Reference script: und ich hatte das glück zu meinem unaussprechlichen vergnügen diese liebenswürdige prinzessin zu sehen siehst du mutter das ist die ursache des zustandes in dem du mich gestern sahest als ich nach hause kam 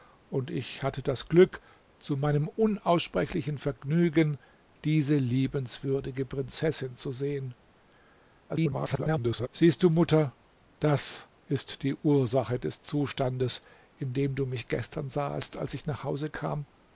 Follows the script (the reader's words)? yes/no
no